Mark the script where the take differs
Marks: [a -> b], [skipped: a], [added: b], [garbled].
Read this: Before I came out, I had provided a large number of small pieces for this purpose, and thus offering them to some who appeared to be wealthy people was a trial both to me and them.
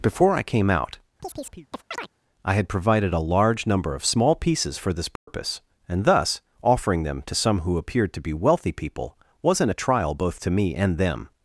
Before I came out, I had provided a large number of small pieces for this purpose, and thus offering them to some who appeared to be wealthy people [was -> wasn't] a trial both to me and them.